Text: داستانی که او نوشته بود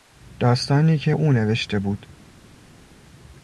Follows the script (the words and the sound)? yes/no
yes